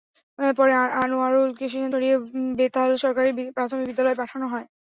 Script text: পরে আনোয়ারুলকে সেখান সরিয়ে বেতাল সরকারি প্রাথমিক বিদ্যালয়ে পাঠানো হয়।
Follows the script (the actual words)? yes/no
yes